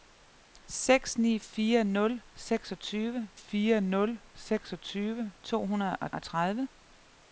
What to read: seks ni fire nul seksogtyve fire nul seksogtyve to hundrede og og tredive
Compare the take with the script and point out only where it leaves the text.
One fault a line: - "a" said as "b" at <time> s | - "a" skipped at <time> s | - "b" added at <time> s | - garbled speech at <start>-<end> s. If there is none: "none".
none